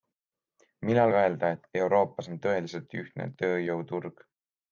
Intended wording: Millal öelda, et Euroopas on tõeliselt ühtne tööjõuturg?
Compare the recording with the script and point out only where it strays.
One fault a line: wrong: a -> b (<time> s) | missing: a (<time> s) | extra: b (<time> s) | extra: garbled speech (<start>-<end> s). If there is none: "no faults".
no faults